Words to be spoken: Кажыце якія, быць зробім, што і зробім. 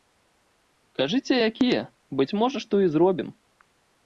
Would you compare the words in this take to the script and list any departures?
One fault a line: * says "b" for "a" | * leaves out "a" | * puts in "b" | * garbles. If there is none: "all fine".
* says "можа" for "зробім"